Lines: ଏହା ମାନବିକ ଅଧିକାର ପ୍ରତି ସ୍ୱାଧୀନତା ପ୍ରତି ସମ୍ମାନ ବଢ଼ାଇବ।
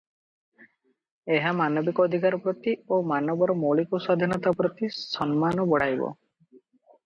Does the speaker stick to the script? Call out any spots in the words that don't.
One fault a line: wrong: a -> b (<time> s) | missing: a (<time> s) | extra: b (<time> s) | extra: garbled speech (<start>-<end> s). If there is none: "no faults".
extra: ଓ ମାନବର ମୌଳିକ (2.9 s)